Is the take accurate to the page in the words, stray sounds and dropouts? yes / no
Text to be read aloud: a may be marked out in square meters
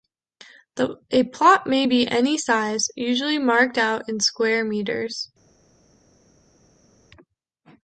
no